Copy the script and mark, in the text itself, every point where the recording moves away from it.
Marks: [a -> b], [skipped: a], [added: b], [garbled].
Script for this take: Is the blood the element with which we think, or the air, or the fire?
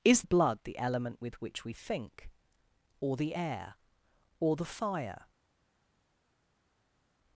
Is [skipped: the] blood the element with which we think, or the air, or the fire?